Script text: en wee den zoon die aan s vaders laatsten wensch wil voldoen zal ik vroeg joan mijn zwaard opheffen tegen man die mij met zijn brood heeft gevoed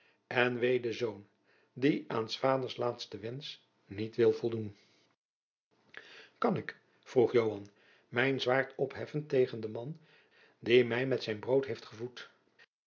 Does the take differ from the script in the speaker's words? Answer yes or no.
yes